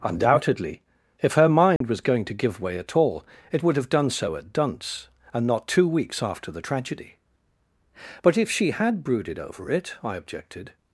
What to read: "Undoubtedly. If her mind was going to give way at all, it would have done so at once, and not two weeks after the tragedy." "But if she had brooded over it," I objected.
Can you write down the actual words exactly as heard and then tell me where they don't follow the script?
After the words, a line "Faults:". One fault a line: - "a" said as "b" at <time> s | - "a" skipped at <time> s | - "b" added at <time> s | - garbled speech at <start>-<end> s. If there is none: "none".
"Undoubtedly. If her mind was going to give way at all, it would have done so at dunce, and not two weeks after the tragedy." "But if she had brooded over it," I objected.
Faults:
- "once" said as "dunce" at 4.5 s